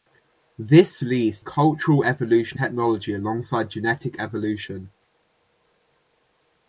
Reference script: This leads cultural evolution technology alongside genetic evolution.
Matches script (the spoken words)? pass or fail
pass